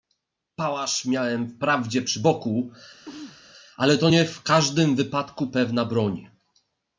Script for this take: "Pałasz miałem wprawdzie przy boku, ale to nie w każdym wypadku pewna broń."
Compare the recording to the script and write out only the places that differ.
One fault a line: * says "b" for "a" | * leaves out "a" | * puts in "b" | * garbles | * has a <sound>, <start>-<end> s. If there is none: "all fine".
* has a sneeze, 3.1-3.4 s